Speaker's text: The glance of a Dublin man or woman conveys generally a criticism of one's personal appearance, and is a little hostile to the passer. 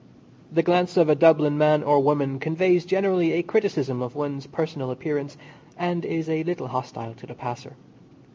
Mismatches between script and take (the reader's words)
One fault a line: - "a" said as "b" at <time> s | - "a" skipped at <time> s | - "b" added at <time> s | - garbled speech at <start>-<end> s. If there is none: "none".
none